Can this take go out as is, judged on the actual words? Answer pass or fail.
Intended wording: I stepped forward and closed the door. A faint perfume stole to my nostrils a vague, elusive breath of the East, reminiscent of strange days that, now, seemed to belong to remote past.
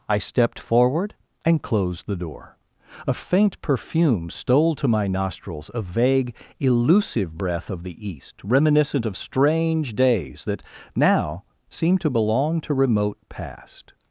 pass